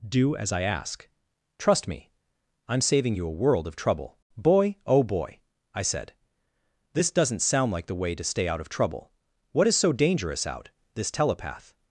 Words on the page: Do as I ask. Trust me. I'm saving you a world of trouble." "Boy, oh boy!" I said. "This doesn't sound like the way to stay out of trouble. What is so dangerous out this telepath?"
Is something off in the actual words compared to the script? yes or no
no